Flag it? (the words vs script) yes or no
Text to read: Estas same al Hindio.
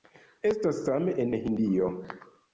yes